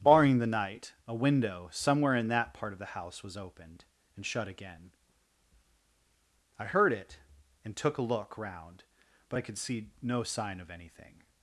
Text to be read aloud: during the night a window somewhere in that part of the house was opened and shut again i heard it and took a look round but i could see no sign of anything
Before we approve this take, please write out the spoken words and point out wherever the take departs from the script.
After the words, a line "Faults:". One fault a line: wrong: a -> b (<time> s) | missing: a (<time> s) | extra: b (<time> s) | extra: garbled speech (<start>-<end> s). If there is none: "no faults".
barring the night a window somewhere in that part of the house was opened and shut again i heard it and took a look round but i could see no sign of anything
Faults:
wrong: during -> barring (0.0 s)